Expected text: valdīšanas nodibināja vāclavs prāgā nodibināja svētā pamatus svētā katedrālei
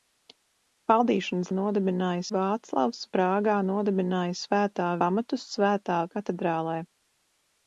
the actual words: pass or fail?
pass